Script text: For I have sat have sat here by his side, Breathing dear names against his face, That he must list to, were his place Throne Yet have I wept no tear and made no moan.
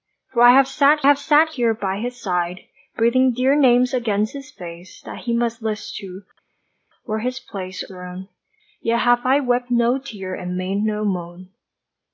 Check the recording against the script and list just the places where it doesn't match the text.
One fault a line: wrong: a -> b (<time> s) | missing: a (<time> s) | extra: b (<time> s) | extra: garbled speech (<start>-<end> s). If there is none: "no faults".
no faults